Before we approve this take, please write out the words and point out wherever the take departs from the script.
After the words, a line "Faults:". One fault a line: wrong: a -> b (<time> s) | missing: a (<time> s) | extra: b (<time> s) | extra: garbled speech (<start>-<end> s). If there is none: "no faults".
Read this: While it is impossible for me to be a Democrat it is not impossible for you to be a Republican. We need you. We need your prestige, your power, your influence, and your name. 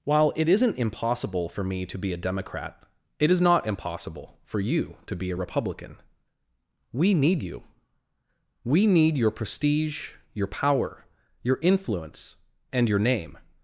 While it isn't impossible for me to be a Democrat it is not impossible for you to be a Republican. We need you. We need your prestige, your power, your influence, and your name.
Faults:
wrong: is -> isn't (0.5 s)